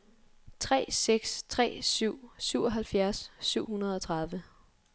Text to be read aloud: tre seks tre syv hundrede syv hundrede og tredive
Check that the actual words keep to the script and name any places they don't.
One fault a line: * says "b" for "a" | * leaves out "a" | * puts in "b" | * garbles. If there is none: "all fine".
* says "syvoghalvfjerds" for "hundrede"